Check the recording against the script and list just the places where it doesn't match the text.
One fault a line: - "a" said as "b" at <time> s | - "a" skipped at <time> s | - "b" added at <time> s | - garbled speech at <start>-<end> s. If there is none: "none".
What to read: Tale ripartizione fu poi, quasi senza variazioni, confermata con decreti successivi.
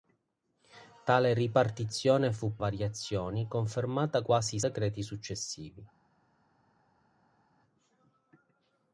- "poi quasi senza" skipped at 2.6 s
- "con" said as "quasi" at 4.2 s